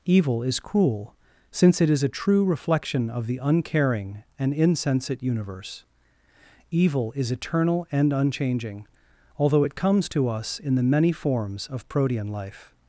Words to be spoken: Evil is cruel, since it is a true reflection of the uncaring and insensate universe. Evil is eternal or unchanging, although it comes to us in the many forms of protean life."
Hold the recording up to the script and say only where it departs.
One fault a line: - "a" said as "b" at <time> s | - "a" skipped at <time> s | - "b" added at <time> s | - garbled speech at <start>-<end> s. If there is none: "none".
- "or" said as "and" at 7.9 s